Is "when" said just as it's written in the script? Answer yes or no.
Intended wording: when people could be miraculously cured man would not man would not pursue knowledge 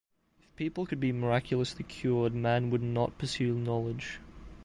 no